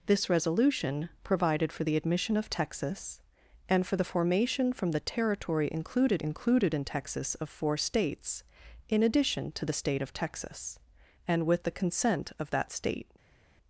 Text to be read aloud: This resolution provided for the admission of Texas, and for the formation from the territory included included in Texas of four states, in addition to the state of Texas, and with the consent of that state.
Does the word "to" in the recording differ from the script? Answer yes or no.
no